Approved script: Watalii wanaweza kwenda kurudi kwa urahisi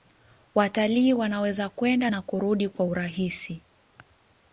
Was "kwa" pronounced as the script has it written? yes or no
yes